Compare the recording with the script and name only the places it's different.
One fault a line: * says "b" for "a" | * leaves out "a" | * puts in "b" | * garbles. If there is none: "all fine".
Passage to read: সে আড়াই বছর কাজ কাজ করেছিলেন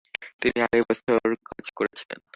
* says "তিনি" for "সে"
* leaves out "কাজ"